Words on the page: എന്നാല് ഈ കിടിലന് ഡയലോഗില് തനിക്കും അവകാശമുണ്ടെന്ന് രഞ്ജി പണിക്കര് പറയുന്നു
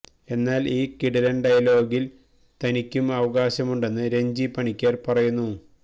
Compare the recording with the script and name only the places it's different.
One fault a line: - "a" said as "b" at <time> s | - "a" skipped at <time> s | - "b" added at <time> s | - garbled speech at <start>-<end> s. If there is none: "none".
none